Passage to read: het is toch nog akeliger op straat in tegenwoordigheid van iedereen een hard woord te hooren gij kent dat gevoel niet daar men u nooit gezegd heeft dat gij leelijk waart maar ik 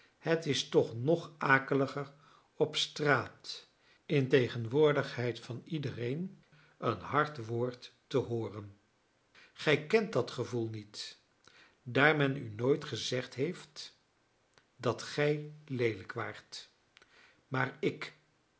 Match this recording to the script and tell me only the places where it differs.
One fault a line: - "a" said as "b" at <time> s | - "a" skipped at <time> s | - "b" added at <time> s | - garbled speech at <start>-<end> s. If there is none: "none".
none